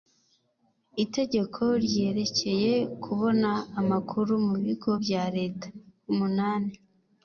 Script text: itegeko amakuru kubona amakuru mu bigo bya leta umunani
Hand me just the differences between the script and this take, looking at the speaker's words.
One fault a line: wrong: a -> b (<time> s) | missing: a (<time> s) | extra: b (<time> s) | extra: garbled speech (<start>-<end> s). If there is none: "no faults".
wrong: amakuru -> ryerekeye (1.9 s)